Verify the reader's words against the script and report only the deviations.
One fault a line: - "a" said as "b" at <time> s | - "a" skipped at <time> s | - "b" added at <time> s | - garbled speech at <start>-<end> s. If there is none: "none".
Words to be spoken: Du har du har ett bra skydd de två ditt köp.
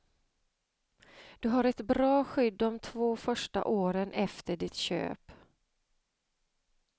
- "du har" skipped at 1.6 s
- "första åren efter" added at 3.1 s